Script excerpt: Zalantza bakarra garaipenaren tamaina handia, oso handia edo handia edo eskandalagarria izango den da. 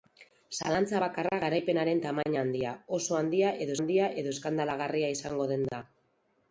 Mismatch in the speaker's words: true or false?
false